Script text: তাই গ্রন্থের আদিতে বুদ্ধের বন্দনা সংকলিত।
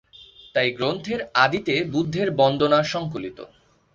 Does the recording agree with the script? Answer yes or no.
yes